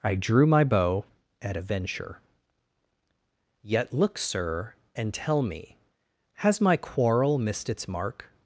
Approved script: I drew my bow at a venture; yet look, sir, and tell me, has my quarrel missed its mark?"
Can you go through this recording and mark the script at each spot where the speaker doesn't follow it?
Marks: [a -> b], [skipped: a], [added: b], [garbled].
I drew my bow at a venture; yet look, sir, and tell me, has my quarrel missed its mark?"